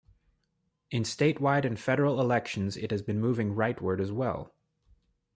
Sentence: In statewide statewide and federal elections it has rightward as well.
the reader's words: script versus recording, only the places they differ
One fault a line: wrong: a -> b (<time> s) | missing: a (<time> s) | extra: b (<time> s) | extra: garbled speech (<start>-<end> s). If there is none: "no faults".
missing: statewide (1.6 s)
extra: been moving (3.0 s)